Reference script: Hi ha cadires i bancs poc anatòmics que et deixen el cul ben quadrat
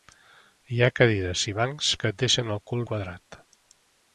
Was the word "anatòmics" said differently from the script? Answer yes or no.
yes